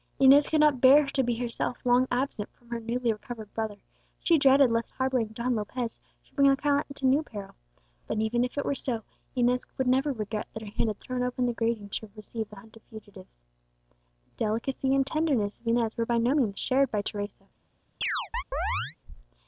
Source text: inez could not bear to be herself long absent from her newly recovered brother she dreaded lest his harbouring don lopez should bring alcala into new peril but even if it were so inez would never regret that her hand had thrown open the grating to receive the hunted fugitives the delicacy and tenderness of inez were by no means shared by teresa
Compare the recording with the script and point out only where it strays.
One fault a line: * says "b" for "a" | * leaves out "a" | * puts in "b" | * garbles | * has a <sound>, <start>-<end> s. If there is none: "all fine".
* leaves out "his"
* has a chirp, 18.0-19.0 s